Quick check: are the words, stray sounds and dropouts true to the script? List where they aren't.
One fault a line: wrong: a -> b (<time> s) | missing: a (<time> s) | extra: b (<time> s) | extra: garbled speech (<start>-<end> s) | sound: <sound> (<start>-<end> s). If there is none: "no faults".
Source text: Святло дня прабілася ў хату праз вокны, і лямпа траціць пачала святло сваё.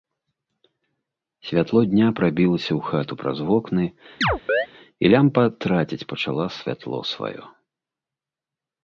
sound: chirp (4.2-4.7 s)